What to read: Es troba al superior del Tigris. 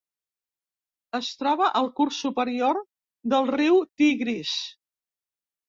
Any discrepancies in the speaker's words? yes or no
yes